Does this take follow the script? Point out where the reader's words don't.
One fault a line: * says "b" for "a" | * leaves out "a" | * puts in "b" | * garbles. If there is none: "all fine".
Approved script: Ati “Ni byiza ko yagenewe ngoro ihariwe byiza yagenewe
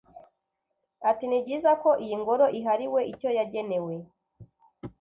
* says "iyi" for "yagenewe"
* says "icyo" for "byiza"